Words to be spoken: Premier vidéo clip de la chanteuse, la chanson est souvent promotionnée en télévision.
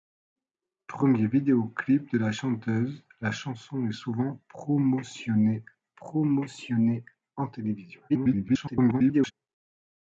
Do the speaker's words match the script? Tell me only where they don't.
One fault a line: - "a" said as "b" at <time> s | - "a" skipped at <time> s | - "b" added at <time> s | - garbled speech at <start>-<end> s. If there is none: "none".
- "promotionnée" added at 5.9 s
- garbled speech at 8.1-9.3 s